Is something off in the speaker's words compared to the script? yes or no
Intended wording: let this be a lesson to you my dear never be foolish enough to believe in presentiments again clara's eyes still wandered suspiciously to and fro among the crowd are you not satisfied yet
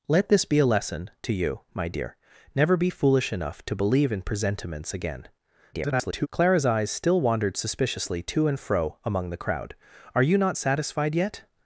yes